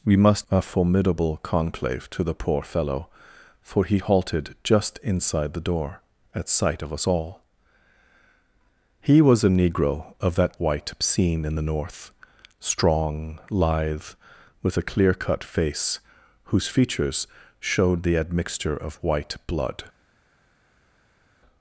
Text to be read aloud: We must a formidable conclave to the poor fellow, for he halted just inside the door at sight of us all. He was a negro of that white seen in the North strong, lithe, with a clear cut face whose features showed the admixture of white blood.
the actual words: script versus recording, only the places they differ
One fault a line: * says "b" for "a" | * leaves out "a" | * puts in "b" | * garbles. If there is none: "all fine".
all fine